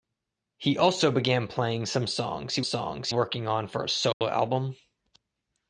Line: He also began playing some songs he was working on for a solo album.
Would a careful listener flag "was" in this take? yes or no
yes